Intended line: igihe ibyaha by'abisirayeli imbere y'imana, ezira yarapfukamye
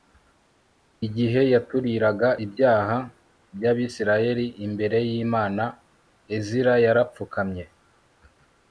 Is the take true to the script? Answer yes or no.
no